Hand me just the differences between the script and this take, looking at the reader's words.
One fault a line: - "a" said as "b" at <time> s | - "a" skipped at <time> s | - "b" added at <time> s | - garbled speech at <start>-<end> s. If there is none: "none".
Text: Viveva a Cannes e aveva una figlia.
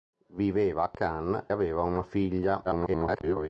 - "e" skipped at 1.5 s
- garbled speech at 2.6-3.5 s